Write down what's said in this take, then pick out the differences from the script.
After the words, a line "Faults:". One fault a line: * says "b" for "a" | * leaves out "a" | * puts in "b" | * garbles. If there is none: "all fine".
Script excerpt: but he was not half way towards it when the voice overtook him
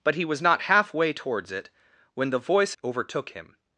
but he was not half way towards it when the voice overtook him
Faults:
all fine